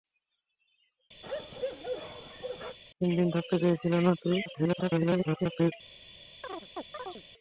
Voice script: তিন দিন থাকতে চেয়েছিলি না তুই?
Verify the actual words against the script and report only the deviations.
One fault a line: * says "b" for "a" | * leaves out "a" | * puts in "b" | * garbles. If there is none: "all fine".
* garbles